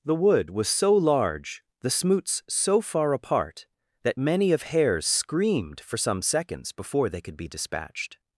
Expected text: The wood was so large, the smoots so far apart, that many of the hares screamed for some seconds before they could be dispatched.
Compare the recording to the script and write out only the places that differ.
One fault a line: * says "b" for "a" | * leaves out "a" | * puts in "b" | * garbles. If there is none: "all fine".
* leaves out "the"